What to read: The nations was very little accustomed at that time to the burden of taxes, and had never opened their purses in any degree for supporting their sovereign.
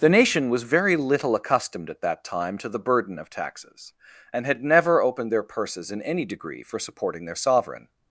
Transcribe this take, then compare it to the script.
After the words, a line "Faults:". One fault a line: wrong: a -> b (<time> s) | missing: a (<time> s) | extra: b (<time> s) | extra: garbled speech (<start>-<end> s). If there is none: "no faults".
The nation was very little accustomed at that time to the burden of taxes, and had never opened their purses in any degree for supporting their sovereign.
Faults:
wrong: nations -> nation (0.1 s)